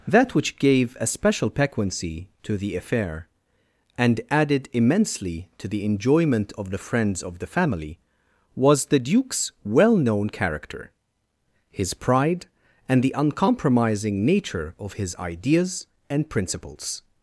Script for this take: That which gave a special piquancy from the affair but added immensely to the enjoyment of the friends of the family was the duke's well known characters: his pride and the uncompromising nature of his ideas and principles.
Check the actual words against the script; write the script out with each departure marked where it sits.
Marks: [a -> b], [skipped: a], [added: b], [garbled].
That which gave a special piquancy [from -> to] the affair [but -> and] added immensely to the enjoyment of the friends of the family was the duke's well known [characters: -> character] his pride and the uncompromising nature of his ideas and principles.